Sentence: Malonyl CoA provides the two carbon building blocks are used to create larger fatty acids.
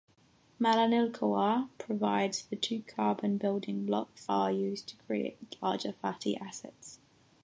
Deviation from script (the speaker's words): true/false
false